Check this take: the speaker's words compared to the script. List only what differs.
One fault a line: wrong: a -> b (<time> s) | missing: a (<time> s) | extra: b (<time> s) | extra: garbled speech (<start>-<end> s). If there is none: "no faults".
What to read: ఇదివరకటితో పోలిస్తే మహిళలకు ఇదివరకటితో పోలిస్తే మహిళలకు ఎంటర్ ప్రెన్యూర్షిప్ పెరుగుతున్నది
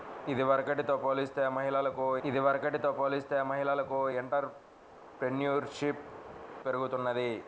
no faults